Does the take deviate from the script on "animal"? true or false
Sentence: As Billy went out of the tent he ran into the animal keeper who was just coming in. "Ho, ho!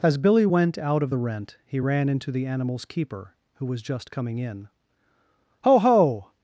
true